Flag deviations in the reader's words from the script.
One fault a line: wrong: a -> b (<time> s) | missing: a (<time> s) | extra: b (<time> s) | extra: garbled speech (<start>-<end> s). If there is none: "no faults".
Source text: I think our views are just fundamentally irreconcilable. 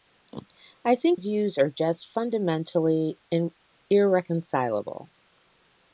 missing: our (1.2 s)